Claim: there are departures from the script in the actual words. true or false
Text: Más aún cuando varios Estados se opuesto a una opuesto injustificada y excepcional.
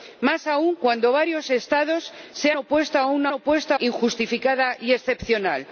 false